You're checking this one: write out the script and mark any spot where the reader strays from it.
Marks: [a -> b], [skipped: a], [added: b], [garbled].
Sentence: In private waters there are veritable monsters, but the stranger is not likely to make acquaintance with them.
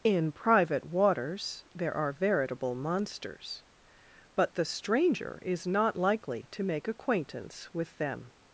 In private waters there are veritable monsters, but the stranger is not likely to make acquaintance with them.